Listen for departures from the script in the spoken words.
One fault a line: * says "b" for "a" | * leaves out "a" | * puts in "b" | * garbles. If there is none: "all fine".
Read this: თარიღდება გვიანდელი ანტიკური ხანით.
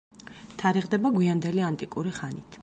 all fine